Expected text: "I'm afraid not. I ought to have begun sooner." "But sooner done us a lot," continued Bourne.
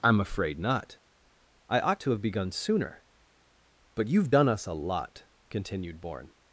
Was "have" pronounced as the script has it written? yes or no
yes